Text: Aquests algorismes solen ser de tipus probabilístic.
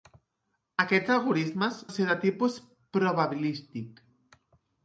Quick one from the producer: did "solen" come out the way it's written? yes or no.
no